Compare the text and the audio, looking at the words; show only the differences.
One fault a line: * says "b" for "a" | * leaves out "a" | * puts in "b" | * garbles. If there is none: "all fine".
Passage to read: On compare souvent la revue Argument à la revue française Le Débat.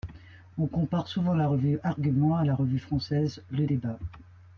all fine